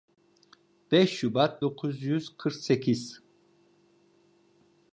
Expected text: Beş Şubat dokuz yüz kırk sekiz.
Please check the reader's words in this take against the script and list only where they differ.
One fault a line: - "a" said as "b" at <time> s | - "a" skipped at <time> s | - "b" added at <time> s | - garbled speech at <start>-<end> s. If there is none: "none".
none